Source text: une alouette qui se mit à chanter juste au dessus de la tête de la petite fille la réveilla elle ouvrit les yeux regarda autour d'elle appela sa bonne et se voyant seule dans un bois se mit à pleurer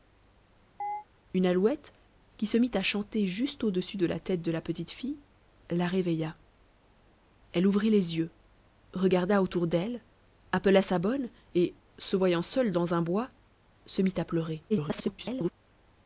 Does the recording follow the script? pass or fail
fail